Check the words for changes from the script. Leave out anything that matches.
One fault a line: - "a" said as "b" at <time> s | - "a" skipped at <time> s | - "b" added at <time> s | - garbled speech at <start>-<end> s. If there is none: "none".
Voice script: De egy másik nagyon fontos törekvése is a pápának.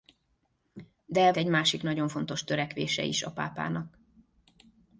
none